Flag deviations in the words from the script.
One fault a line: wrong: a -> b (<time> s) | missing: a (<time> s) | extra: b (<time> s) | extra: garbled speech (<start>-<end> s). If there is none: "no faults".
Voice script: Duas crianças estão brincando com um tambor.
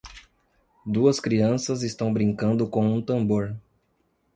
no faults